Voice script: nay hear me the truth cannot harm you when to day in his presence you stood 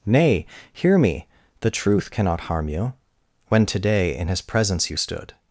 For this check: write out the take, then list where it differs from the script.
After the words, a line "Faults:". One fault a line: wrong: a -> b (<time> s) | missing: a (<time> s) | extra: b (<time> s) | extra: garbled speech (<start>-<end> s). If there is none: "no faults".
nay hear me the truth cannot harm you when to day in his presence you stood
Faults:
no faults